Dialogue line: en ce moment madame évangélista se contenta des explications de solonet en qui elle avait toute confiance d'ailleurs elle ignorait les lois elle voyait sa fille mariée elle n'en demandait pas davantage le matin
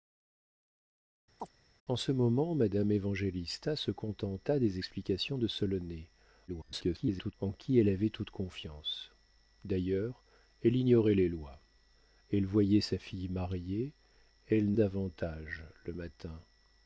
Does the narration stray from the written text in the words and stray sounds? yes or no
yes